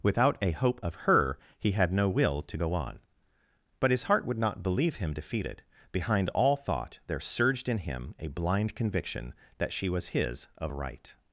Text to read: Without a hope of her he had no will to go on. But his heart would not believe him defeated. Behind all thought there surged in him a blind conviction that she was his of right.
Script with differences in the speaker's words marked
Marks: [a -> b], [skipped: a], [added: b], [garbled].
Without a hope of her he had no will to go on. But his heart would not believe him defeated. Behind all thought there surged in him a blind conviction that she was his of right.